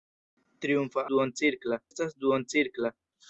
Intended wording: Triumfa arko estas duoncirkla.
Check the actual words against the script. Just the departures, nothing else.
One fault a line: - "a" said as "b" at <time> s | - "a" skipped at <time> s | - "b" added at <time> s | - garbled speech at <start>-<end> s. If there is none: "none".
- "arko" said as "duoncirkla" at 1.1 s